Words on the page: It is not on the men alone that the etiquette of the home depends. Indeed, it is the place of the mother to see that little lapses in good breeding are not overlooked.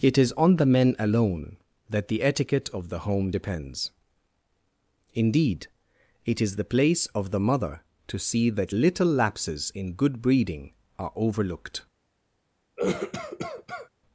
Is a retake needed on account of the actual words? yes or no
yes